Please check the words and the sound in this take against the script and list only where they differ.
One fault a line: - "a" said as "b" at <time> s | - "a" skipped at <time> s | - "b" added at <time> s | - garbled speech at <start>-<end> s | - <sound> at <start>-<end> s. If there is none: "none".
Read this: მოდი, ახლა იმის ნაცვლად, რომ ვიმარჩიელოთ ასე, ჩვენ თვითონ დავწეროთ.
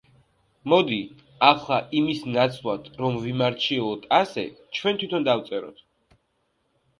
none